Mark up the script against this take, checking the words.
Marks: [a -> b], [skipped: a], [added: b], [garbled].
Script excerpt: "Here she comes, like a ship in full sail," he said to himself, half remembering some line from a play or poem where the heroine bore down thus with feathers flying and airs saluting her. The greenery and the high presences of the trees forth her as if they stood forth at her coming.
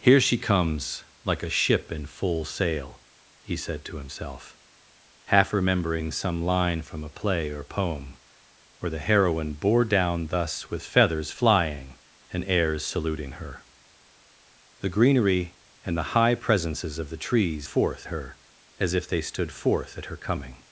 "Here she comes, like a ship in full sail," he said to himself, half remembering some line from a play or poem where the heroine bore down thus with feathers flying and airs saluting her. The greenery and the high presences of the trees forth her as if they stood forth at her coming.